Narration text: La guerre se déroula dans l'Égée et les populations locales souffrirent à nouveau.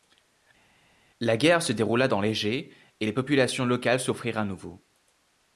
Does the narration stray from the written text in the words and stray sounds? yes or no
no